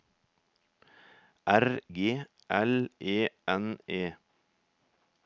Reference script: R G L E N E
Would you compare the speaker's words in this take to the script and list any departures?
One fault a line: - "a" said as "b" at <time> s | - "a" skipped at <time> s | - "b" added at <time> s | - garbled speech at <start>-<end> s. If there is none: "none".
none